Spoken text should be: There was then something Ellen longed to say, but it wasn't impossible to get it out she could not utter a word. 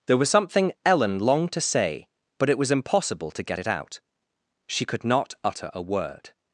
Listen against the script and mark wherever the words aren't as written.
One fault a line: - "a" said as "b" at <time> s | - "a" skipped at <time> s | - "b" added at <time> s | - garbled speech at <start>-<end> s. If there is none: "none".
- "then" skipped at 0.3 s
- "wasn't" said as "was" at 2.6 s